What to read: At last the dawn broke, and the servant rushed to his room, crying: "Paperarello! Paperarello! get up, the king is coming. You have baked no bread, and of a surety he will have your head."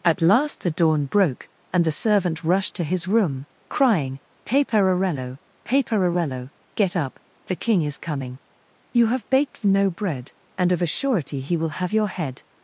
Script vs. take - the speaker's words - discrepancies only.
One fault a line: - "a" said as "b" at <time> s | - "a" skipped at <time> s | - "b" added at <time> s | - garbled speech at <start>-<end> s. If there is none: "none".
none